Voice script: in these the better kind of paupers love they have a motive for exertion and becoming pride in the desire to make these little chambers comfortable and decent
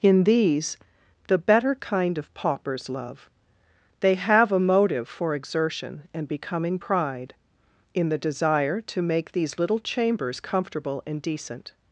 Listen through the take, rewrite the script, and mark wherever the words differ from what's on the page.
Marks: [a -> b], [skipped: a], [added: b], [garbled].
in these the better kind of paupers love they have a motive for exertion and becoming pride in the desire to make these little chambers comfortable and decent